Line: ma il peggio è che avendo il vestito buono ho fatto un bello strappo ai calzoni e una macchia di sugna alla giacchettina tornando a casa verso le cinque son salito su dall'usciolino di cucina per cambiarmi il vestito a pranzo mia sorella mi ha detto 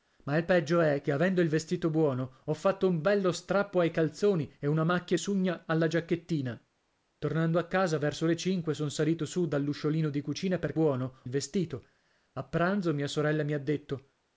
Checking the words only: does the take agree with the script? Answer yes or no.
no